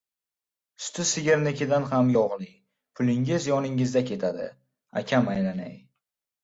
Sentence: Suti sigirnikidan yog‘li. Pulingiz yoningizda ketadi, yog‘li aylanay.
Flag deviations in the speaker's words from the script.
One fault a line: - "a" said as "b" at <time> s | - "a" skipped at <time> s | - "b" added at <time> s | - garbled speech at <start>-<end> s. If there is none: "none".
- "ham" added at 1.9 s
- "yog‘li" said as "akam" at 5.0 s